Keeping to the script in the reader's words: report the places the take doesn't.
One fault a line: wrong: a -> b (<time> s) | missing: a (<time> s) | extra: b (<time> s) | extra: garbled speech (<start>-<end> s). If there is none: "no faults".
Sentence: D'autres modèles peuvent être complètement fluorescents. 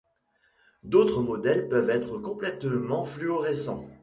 no faults